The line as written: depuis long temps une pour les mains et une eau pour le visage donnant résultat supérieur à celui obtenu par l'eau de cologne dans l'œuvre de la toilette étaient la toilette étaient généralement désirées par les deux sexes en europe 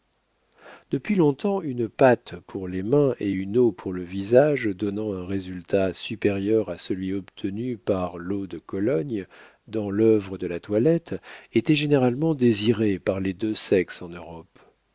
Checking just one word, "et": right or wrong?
right